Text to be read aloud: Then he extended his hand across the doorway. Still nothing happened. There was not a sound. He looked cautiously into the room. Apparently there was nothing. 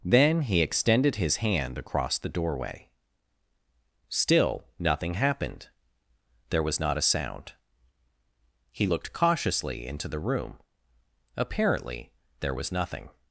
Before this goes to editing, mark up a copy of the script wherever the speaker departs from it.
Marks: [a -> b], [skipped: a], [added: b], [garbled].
Then he extended his hand across the doorway. Still nothing happened. There was not a sound. He looked cautiously into the room. Apparently there was nothing.